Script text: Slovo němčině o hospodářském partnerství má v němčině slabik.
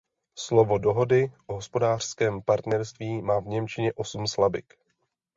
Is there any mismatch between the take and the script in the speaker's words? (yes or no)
yes